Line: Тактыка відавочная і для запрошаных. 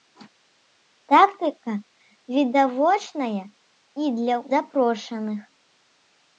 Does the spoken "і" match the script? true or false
true